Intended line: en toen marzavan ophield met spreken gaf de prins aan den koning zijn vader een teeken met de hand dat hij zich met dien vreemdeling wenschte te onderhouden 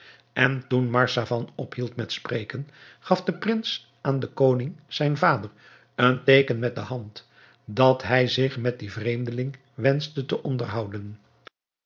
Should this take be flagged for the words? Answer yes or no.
no